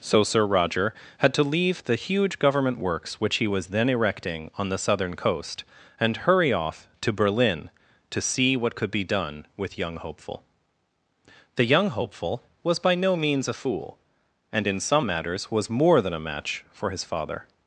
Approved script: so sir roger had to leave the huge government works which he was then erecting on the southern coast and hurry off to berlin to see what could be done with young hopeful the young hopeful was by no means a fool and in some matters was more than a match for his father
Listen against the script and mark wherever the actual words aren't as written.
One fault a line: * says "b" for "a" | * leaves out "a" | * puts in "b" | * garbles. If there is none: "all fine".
all fine